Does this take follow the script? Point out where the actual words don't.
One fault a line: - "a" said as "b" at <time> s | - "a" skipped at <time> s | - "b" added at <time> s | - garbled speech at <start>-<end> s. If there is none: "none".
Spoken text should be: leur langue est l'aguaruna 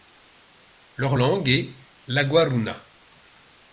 none